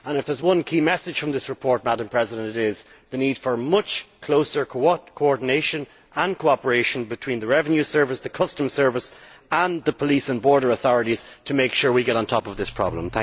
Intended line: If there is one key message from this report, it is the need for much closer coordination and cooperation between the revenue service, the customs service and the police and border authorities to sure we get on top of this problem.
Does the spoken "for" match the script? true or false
true